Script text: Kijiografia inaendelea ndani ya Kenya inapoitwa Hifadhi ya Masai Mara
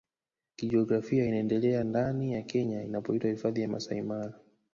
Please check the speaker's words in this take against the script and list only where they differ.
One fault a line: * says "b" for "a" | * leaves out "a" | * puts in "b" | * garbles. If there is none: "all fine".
all fine